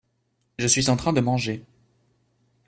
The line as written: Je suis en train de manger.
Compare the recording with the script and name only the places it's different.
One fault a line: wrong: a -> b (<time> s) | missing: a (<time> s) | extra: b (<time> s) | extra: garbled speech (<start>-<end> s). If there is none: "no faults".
no faults